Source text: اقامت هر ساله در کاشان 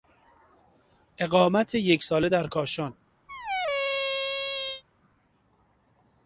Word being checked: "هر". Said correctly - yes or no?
no